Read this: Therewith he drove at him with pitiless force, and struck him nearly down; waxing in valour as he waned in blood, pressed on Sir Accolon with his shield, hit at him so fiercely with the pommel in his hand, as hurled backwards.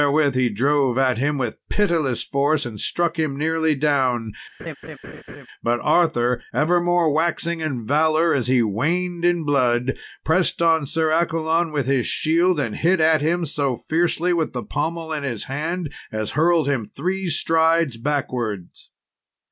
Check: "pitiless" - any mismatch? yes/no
no